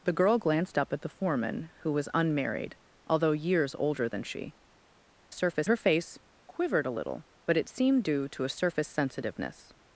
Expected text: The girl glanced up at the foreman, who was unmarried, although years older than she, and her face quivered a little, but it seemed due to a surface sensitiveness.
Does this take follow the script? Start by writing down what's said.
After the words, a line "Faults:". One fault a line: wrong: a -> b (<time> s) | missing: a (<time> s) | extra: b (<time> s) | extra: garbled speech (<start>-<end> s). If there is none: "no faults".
The girl glanced up at the foreman, who was unmarried, although years older than she, surface her face quivered a little, but it seemed due to a surface sensitiveness.
Faults:
wrong: and -> surface (5.3 s)